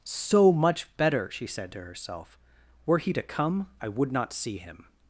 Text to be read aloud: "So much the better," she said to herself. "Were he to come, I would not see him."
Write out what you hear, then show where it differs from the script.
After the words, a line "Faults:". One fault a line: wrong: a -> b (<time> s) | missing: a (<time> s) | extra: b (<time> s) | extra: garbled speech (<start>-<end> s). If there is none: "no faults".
"So much better," she said to herself. "Were he to come, I would not see him."
Faults:
missing: the (0.9 s)